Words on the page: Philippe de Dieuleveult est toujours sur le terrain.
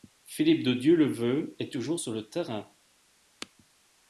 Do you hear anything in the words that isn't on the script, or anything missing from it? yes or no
no